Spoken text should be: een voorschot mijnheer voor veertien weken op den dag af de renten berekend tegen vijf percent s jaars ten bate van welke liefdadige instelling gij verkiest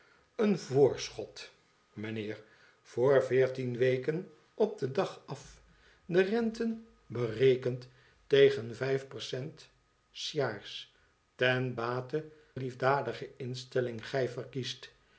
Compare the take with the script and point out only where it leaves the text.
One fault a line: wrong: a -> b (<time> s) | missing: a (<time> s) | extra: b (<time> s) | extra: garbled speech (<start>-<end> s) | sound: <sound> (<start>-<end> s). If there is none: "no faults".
missing: van welke (12.2 s)